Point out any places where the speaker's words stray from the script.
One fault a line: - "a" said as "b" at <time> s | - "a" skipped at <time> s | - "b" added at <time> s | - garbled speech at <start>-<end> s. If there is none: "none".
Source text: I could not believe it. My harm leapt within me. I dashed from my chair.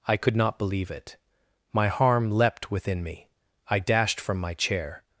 none